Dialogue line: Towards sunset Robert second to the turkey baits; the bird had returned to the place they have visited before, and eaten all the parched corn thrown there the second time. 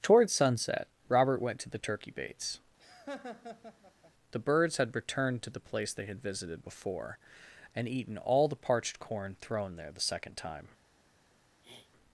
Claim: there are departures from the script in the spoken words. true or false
true